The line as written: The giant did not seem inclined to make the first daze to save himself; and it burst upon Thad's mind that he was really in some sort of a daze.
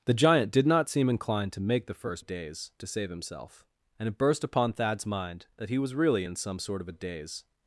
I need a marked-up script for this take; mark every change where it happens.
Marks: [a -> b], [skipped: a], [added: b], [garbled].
The giant did not seem inclined to make the first daze to save himself; and it burst upon Thad's mind that he was really in some sort of a daze.